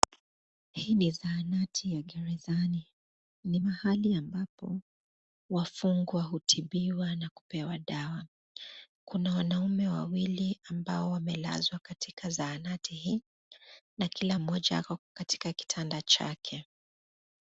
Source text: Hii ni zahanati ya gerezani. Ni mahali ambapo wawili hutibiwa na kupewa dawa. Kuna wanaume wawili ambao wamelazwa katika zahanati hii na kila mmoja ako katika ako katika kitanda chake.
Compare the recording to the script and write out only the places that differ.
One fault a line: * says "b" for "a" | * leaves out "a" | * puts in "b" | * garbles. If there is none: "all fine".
* says "wafungwa" for "wawili"
* leaves out "ako katika"